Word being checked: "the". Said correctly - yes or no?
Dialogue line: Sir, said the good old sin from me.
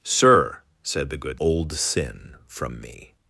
yes